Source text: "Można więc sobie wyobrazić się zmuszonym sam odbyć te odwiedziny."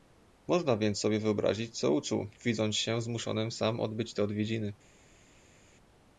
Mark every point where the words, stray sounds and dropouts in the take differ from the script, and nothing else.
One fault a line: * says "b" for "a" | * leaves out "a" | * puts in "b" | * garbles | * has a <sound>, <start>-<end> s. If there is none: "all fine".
* puts in "co uczuł widząc"